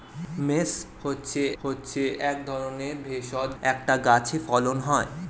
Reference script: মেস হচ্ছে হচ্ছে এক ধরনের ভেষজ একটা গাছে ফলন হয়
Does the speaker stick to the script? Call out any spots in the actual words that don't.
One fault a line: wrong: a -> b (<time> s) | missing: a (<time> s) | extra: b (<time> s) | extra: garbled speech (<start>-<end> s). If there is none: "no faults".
no faults